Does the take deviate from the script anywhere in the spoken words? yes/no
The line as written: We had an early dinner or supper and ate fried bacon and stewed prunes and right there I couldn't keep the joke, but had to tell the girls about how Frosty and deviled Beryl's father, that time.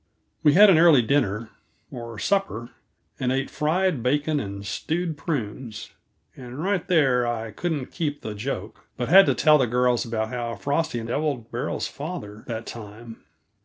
no